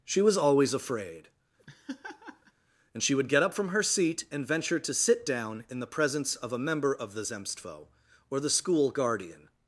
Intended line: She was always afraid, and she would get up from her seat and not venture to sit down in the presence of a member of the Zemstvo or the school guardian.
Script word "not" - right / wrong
wrong